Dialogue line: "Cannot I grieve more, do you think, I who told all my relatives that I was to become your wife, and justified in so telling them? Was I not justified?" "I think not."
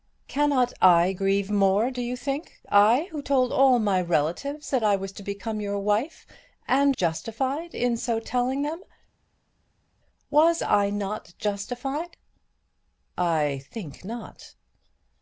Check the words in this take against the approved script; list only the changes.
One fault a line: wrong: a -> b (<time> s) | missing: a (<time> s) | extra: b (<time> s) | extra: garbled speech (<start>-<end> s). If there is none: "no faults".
no faults